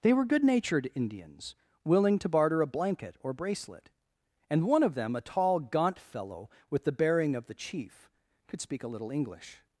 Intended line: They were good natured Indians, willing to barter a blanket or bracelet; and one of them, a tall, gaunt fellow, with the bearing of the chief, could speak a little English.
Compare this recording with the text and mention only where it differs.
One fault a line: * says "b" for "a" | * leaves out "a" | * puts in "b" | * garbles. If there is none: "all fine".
all fine